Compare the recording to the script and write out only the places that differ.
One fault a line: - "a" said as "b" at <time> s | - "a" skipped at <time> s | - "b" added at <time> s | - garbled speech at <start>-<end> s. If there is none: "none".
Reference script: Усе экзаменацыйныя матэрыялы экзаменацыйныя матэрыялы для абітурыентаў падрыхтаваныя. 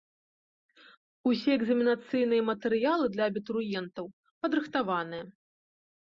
- "экзаменацыйныя матэрыялы" skipped at 3.0 s